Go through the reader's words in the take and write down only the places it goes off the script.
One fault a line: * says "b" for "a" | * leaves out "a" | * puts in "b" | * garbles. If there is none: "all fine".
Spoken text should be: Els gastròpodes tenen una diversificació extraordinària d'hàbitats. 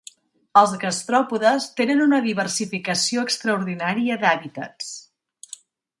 all fine